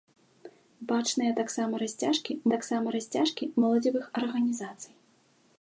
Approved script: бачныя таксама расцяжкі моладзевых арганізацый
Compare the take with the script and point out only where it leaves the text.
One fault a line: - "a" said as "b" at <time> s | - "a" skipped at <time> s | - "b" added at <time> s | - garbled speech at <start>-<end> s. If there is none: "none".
- "таксама расцяжкі" added at 2.5 s